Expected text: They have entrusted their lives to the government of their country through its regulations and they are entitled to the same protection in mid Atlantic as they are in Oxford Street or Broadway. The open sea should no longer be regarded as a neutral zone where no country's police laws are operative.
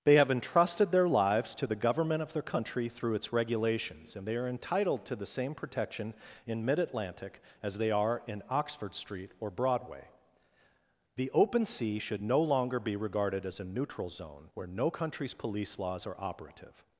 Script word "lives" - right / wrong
right